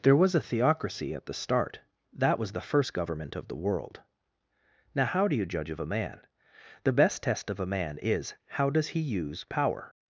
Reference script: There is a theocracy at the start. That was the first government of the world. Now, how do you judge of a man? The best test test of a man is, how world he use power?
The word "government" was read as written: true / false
true